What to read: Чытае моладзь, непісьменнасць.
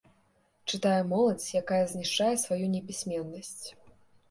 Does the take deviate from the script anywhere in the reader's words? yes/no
yes